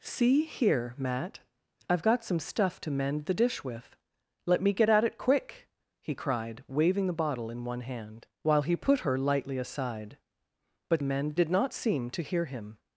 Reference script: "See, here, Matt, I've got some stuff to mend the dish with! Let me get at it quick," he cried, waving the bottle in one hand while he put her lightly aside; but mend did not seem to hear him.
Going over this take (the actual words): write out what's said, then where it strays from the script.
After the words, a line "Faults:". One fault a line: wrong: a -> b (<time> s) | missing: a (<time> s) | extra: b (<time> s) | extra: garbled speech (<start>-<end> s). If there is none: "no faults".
"See, here, Matt, I've got some stuff to mend the dish with! Let me get at it quick," he cried, waving the bottle in one hand while he put her lightly aside; but mend did not seem to hear him.
Faults:
no faults